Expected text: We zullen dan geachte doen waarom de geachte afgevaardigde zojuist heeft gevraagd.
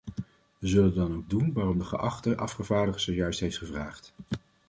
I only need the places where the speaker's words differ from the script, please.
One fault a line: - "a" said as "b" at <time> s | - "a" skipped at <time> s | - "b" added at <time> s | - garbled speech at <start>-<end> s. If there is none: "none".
- "geachte" said as "ook" at 1.1 s